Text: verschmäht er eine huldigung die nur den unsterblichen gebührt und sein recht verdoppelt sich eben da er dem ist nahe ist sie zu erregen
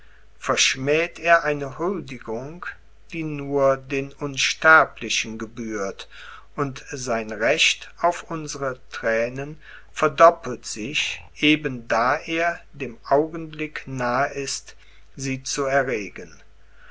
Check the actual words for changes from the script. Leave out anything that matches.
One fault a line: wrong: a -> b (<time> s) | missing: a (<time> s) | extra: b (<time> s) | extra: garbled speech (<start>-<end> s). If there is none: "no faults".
extra: auf unsere thränen (8.0 s)
wrong: ist -> augenblick (13.0 s)